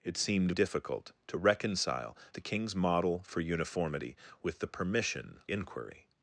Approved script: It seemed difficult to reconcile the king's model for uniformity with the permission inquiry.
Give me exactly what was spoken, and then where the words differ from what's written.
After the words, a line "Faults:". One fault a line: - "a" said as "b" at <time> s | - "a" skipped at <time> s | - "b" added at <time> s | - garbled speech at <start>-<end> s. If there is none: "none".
It seemed difficult to reconcile the king's model for uniformity with the permission inquiry.
Faults:
none